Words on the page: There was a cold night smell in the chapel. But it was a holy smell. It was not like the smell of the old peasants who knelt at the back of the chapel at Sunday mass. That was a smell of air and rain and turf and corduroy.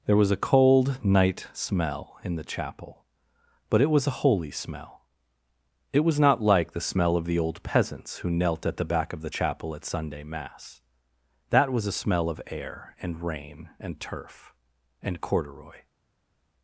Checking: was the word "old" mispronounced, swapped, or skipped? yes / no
no